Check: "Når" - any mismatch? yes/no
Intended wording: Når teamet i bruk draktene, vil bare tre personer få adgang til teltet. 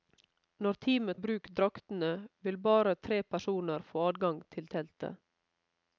no